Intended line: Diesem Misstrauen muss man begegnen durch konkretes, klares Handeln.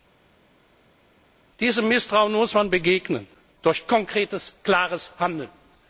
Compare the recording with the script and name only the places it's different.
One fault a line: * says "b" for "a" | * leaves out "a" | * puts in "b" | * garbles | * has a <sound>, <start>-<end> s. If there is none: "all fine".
all fine